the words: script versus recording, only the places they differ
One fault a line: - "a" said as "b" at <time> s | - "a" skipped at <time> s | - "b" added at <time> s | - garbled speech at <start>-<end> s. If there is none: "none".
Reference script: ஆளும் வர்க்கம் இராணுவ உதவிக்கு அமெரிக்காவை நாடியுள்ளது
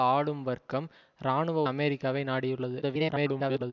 - "உதவிக்கு" skipped at 1.6 s
- garbled speech at 2.8-3.7 s